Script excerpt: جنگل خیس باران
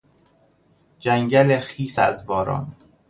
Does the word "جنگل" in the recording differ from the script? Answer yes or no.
no